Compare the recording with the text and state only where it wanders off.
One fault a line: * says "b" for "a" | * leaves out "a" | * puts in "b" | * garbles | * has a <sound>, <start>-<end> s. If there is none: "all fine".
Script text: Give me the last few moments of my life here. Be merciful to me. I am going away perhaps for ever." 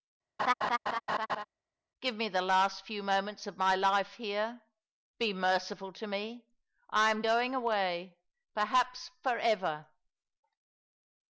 * has a laugh, 0.4-1.4 s